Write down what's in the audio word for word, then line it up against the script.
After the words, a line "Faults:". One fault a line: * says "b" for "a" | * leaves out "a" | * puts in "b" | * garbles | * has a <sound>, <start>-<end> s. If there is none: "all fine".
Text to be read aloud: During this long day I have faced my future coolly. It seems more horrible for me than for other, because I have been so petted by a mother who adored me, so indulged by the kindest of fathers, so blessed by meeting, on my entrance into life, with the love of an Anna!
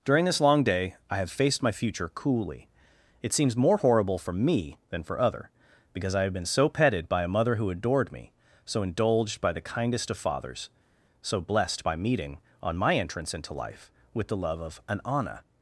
During this long day I have faced my future coolly. It seems more horrible for me than for other, because I have been so petted by a mother who adored me, so indulged by the kindest of fathers, so blessed by meeting, on my entrance into life, with the love of an Anna!
Faults:
all fine